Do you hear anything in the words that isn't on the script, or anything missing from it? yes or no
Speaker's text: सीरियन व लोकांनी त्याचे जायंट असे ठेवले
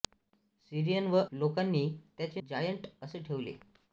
no